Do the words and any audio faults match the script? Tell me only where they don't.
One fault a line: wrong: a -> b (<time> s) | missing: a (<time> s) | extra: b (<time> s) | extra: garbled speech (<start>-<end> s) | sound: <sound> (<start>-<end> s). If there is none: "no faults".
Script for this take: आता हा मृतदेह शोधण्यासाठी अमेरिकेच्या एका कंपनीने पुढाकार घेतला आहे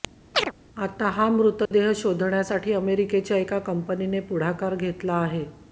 sound: chirp (0.3-0.5 s)
sound: dropout (1.7-1.7 s)